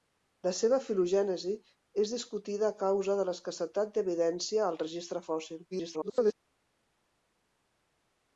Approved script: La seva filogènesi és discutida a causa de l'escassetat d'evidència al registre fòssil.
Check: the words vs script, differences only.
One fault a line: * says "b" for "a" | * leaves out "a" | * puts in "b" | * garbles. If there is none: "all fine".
* garbles